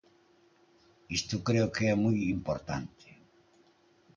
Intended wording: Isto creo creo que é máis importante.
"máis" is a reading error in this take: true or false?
true